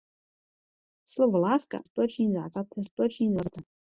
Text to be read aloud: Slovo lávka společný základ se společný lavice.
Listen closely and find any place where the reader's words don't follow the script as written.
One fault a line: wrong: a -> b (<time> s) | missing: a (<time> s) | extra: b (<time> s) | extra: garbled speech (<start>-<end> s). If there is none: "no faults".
no faults